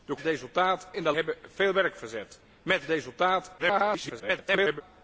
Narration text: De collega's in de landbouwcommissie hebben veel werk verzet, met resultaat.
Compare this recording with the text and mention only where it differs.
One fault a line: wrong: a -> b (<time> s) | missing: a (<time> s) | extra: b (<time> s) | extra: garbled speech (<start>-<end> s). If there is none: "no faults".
wrong: collega's -> resultaat (0.2 s)
missing: landbouwcommissie (1.1 s)
extra: garbled speech (3.6-4.8 s)